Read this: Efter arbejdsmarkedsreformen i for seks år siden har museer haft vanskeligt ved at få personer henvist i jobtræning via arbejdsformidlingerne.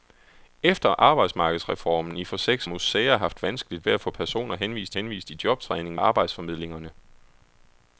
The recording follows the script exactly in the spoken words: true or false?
false